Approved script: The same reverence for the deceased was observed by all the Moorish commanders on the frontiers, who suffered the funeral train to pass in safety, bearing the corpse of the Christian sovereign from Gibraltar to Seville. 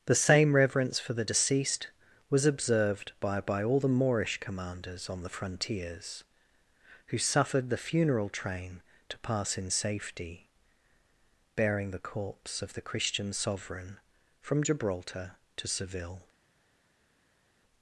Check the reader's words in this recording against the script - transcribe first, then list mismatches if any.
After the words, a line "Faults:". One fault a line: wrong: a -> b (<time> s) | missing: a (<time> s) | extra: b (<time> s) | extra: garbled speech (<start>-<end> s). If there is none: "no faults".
The same reverence for the deceased was observed by by all the Moorish commanders on the frontiers, who suffered the funeral train to pass in safety, bearing the corpse of the Christian sovereign from Gibraltar to Seville.
Faults:
extra: by (3.4 s)